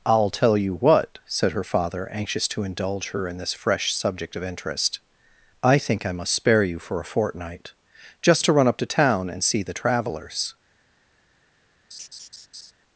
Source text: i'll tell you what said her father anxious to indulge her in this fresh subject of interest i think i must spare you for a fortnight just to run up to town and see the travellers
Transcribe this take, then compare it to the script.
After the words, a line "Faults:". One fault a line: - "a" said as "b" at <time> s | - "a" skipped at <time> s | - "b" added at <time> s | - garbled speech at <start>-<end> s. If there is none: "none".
i'll tell you what said her father anxious to indulge her in this fresh subject of interest i think i must spare you for a fortnight just to run up to town and see the travellers
Faults:
none